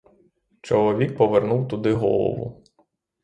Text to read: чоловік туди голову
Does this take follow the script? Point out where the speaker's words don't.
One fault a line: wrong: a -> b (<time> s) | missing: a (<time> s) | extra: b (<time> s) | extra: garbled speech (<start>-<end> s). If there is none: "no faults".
extra: повернув (1.2 s)